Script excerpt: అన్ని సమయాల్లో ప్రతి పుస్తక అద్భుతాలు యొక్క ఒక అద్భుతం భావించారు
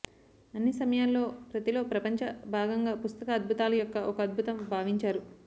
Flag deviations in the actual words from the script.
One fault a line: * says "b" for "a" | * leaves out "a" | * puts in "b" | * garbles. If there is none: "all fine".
* puts in "లో ప్రపంచ భాగంగా"